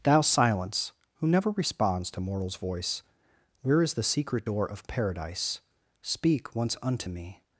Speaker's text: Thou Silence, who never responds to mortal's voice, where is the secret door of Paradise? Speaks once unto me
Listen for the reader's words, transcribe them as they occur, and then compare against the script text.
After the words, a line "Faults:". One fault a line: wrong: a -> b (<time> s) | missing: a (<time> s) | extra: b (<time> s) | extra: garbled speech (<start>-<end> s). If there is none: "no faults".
Thou Silence, who never responds to mortal's voice, where is the secret door of Paradise? Speak once unto me
Faults:
wrong: Speaks -> Speak (6.0 s)